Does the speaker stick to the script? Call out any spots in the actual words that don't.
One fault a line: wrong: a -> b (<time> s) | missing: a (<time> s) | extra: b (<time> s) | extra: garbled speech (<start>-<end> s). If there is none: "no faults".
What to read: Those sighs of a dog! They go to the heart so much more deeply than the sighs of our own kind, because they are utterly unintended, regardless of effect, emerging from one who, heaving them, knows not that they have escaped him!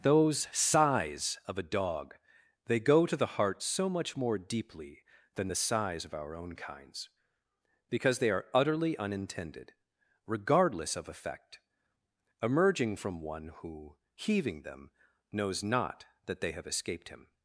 wrong: kind -> kinds (6.5 s)